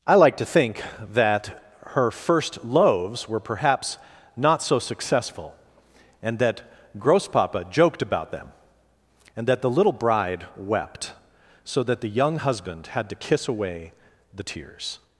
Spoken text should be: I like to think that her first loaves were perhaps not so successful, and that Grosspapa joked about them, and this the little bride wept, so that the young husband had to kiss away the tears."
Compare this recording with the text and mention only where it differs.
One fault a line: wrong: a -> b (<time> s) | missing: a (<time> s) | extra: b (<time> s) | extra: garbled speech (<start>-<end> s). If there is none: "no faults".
wrong: this -> that (9.5 s)